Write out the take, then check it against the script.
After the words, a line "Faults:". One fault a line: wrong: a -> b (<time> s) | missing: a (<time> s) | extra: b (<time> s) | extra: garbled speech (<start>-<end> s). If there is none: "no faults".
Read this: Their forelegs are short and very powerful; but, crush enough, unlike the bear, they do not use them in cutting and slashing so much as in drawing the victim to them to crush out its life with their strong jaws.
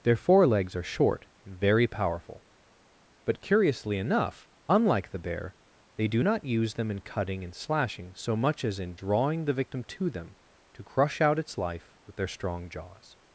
Their forelegs are short and very powerful; but, curiously enough, unlike the bear, they do not use them in cutting and slashing so much as in drawing the victim to them to crush out its life with their strong jaws.
Faults:
wrong: crush -> curiously (3.4 s)